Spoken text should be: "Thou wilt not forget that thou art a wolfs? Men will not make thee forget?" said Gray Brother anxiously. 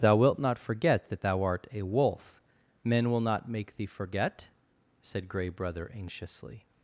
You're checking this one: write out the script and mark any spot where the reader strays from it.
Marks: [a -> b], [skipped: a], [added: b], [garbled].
"Thou wilt not forget that thou art a [wolfs? -> wolf] Men will not make thee forget?" said Gray Brother anxiously.